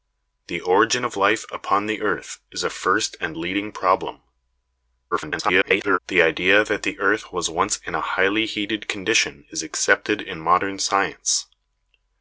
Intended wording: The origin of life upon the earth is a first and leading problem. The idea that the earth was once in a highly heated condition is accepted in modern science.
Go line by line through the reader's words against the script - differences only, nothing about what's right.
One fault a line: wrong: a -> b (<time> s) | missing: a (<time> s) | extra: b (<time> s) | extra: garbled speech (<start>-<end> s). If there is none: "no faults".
extra: garbled speech (5.1-6.0 s)